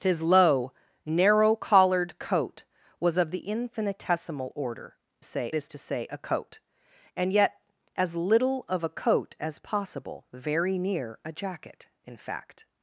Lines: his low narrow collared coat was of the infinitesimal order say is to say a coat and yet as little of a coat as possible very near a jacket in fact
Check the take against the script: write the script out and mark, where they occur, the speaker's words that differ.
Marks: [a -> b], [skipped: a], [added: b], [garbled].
his low narrow collared coat was of the infinitesimal order say is to say a coat and yet as little of a coat as possible very near a jacket in fact